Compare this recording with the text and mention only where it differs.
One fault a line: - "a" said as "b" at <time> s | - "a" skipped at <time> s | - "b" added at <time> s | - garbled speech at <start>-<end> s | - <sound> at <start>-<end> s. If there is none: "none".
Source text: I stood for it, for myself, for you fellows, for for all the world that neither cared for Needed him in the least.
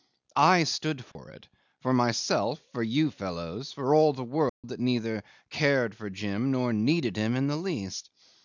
- dropout at 1.1-1.2 s
- "for" skipped at 3.9 s
- dropout at 4.5-4.6 s
- "Jim nor" added at 6.1 s